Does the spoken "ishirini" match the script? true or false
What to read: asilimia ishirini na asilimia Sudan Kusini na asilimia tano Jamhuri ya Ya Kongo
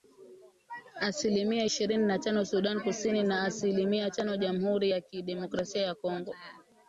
true